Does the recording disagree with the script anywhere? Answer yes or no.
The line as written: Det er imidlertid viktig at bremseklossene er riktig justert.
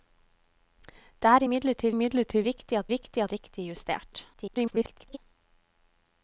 yes